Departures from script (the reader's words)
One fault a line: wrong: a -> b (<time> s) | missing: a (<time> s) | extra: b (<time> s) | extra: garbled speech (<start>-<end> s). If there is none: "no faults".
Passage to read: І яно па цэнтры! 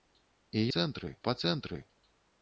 wrong: яно -> цэнтры (0.8 s)